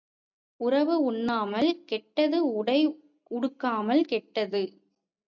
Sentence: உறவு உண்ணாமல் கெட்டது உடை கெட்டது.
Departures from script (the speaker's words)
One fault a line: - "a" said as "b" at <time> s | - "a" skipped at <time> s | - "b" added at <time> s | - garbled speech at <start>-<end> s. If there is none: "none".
- "உடுக்காமல்" added at 3.3 s